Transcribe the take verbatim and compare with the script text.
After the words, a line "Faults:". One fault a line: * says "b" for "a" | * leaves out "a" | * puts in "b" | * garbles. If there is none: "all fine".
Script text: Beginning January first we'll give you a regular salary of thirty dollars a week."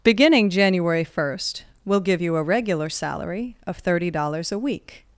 Beginning January first we'll give you a regular salary of thirty dollars a week."
Faults:
all fine